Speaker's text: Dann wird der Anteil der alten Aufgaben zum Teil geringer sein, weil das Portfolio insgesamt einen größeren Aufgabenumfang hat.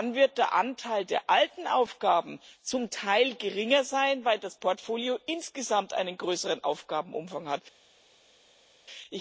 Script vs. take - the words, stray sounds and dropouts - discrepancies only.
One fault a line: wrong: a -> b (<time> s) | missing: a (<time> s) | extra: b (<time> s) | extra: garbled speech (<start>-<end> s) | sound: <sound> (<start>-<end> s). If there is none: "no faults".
no faults